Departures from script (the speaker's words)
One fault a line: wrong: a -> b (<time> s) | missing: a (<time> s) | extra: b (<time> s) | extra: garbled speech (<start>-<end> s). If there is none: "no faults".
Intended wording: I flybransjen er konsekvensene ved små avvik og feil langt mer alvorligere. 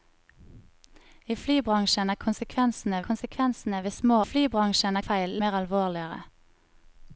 extra: konsekvensene (3.1 s)
wrong: avvik -> flybransjen (4.3 s)
missing: langt (5.4 s)